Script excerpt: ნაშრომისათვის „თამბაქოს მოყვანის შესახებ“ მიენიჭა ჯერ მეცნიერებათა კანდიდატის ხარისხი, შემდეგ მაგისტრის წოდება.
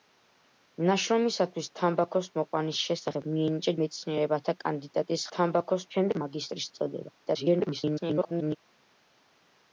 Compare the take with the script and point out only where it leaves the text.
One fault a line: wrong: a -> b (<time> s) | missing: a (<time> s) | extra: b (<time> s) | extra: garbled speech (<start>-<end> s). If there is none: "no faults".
missing: ჯერ (3.7 s)
wrong: ხარისხი -> თამბაქოს (5.4 s)
extra: garbled speech (7.2-8.6 s)